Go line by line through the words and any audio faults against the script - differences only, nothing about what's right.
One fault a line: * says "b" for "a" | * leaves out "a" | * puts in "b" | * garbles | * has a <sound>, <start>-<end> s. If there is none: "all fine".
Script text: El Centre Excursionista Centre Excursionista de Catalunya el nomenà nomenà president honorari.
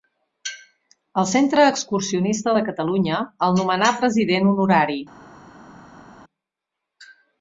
* leaves out "Centre Excursionista"
* leaves out "nomenà"